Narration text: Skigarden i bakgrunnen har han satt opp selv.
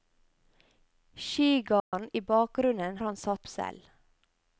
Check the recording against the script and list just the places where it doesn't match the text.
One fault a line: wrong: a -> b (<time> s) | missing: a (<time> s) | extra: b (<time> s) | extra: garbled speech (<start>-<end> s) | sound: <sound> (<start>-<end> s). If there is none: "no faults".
sound: dropout (1.8-1.9 s)
missing: har (3.0 s)
missing: opp (3.5 s)